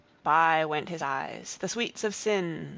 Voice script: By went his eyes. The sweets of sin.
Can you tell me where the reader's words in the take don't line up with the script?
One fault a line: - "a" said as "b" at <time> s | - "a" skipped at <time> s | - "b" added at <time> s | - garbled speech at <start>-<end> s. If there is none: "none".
none